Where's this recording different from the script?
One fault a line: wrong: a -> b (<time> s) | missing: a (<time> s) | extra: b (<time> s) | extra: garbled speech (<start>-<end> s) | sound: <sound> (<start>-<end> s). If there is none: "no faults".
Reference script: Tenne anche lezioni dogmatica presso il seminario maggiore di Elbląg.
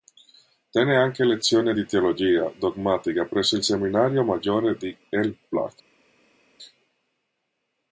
extra: di teologia (1.7 s)